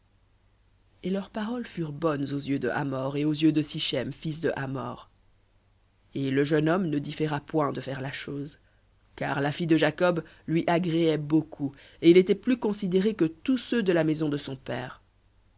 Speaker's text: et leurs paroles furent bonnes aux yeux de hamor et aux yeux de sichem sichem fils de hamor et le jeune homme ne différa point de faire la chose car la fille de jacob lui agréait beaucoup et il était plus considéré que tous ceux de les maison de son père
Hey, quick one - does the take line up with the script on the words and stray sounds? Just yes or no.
no